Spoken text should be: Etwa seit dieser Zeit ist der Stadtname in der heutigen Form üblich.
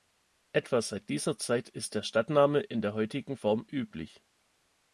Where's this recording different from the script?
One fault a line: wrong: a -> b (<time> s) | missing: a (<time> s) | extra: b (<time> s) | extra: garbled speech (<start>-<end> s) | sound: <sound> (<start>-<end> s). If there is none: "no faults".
no faults